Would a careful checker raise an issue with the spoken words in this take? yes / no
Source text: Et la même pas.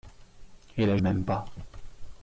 no